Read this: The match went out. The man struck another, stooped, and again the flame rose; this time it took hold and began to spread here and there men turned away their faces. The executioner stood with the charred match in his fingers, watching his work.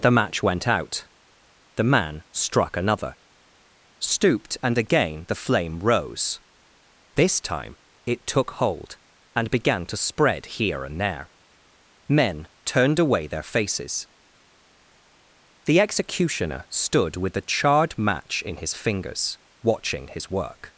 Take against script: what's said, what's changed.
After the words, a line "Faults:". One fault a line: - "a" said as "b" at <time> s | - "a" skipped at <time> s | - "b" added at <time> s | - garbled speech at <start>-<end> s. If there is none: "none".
The match went out. The man struck another, stooped, and again the flame rose; this time it took hold and began to spread here and there men turned away their faces. The executioner stood with the charred match in his fingers, watching his work.
Faults:
none